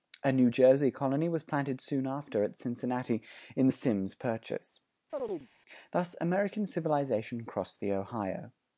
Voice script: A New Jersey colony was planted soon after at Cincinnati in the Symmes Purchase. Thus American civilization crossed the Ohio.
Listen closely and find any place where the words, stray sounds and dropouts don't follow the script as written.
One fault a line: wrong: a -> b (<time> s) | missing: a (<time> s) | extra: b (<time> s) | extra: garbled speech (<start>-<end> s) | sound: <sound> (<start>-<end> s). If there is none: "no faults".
sound: chirp (5.1-5.5 s)